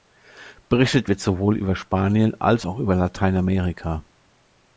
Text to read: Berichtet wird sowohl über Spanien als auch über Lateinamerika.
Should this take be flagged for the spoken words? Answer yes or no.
no